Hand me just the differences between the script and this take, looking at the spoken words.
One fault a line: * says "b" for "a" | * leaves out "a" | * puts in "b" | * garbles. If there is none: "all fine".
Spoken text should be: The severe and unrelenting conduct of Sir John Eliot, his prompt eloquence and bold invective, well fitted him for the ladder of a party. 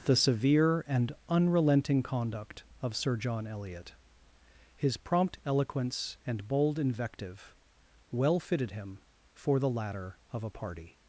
all fine